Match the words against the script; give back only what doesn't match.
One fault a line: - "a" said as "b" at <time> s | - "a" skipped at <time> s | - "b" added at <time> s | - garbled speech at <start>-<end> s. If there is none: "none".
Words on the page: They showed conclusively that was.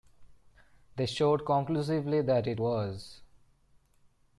- "it" added at 2.5 s